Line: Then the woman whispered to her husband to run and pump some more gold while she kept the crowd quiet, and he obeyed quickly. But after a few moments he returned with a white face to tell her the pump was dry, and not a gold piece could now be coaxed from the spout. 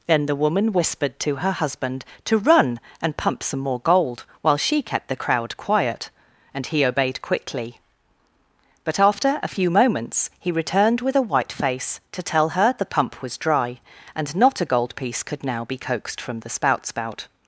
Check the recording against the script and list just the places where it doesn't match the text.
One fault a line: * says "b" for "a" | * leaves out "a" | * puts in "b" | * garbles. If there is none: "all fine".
* puts in "spout"